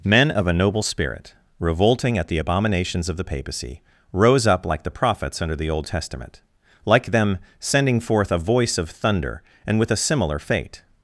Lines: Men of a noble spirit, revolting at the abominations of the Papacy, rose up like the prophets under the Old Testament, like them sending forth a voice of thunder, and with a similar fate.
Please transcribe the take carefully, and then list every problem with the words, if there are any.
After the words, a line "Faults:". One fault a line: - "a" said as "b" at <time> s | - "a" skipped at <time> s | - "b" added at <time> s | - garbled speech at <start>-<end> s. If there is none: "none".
Men of a noble spirit, revolting at the abominations of the Papacy, rose up like the prophets under the Old Testament, like them sending forth a voice of thunder, and with a similar fate.
Faults:
none